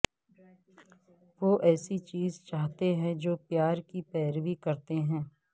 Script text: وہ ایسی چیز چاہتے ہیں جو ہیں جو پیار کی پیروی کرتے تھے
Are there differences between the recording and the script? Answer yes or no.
yes